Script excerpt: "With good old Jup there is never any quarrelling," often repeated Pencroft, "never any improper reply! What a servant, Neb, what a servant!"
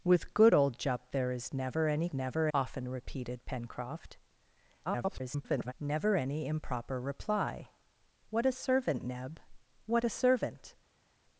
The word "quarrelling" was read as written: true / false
false